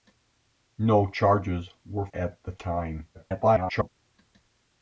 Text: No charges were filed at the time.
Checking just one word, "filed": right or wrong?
wrong